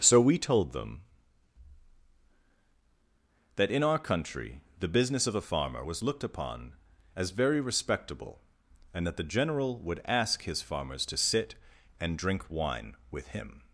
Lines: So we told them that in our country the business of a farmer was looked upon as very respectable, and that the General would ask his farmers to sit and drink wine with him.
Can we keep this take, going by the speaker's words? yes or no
yes